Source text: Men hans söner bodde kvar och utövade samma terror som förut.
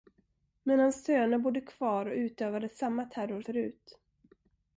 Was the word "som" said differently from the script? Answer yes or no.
yes